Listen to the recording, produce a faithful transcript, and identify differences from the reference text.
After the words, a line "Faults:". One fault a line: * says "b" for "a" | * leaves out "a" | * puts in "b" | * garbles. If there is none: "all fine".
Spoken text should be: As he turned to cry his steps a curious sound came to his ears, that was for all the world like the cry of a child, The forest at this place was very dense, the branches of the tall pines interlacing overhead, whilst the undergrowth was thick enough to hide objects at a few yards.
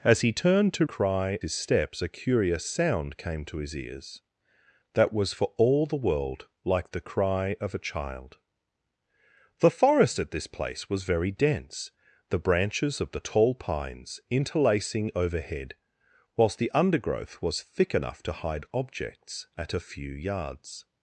As he turned to cry his steps a curious sound came to his ears, that was for all the world like the cry of a child, The forest at this place was very dense, the branches of the tall pines interlacing overhead, whilst the undergrowth was thick enough to hide objects at a few yards.
Faults:
all fine